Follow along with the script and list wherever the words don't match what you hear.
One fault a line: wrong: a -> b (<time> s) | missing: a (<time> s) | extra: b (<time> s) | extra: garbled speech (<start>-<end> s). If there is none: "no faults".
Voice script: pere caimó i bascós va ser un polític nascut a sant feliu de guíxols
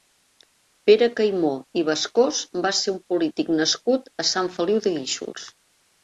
no faults